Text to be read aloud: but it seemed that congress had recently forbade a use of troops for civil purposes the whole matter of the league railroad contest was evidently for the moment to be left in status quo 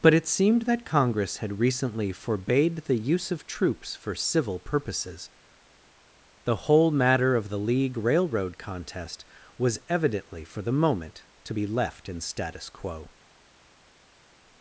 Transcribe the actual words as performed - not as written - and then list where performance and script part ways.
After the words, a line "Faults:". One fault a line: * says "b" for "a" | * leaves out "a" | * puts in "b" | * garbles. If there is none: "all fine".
but it seemed that congress had recently forbade the use of troops for civil purposes the whole matter of the league railroad contest was evidently for the moment to be left in status quo
Faults:
* says "the" for "a"